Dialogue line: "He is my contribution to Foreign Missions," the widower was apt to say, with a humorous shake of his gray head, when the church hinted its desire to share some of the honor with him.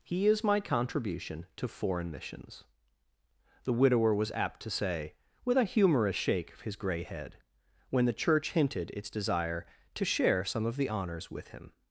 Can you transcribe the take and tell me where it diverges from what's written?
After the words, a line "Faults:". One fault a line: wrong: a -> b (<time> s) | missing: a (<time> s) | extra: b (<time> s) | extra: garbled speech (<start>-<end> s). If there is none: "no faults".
"He is my contribution to Foreign Missions," the widower was apt to say, with a humorous shake of his gray head, when the church hinted its desire to share some of the honors with him.
Faults:
wrong: honor -> honors (10.9 s)